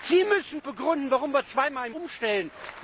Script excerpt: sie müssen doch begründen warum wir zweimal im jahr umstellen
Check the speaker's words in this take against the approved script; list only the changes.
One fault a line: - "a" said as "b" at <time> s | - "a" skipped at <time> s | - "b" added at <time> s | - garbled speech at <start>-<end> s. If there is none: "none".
- "doch" skipped at 0.6 s
- "jahr" skipped at 1.9 s